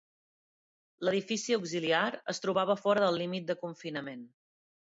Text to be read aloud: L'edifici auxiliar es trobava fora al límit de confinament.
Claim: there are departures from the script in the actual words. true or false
true